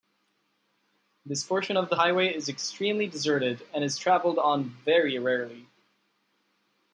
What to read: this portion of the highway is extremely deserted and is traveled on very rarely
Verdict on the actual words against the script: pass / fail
pass